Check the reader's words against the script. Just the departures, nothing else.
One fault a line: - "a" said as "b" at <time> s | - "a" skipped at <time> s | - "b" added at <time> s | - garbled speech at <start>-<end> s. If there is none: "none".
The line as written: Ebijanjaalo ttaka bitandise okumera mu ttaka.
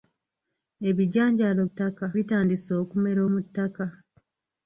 none